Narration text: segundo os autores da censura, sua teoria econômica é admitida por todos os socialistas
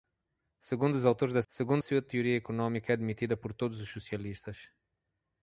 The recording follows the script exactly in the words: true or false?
false